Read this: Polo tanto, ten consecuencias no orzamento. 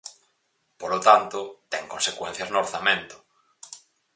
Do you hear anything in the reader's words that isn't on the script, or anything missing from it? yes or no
no